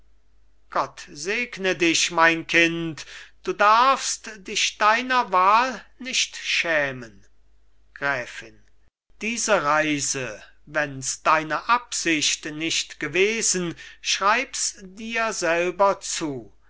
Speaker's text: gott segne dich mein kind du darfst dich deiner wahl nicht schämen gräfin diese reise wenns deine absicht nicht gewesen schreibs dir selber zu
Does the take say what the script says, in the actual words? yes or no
yes